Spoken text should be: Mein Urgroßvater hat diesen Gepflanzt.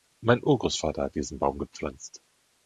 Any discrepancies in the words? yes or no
yes